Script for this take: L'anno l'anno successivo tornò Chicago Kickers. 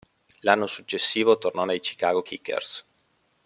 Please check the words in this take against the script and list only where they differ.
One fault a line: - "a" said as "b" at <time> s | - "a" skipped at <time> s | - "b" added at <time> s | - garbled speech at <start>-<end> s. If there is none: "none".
- "l'anno" skipped at 0.7 s
- "nei" added at 1.6 s